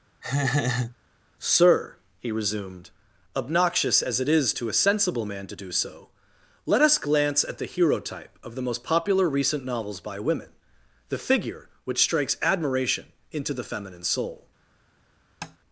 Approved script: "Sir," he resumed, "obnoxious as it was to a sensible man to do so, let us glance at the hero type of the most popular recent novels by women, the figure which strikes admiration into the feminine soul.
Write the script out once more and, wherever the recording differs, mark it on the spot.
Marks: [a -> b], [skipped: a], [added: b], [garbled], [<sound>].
[laugh] "Sir," he resumed, "obnoxious as it [was -> is] to a sensible man to do so, let us glance at the hero type of the most popular recent novels by women, the figure which strikes admiration into the feminine soul. [tap]